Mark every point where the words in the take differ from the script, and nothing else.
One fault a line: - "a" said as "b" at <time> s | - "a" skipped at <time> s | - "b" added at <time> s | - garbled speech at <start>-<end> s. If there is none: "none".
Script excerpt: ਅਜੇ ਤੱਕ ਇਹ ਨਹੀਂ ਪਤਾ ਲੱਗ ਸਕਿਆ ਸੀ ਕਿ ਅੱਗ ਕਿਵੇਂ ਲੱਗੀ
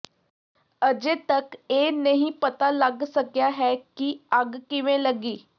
- "ਸੀ" said as "ਹੈ" at 3.6 s